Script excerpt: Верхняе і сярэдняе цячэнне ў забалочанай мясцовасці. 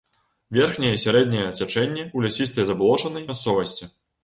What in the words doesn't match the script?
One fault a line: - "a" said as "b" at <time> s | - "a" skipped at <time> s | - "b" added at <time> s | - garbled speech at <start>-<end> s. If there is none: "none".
- "лясістай" added at 2.3 s